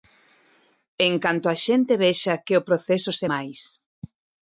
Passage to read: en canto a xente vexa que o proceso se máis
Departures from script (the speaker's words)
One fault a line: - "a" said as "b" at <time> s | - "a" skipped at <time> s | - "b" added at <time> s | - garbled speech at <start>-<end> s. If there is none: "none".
none